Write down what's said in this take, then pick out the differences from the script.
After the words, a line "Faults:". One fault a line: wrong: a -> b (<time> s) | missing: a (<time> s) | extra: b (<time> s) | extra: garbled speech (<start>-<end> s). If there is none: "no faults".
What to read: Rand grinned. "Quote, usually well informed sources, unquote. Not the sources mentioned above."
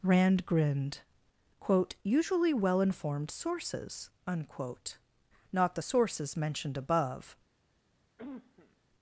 Rand grinned. "Quote, usually well informed sources, unquote. Not the sources mentioned above."
Faults:
no faults